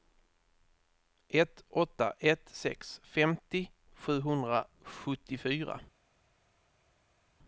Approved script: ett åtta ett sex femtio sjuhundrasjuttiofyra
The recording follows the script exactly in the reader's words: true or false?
true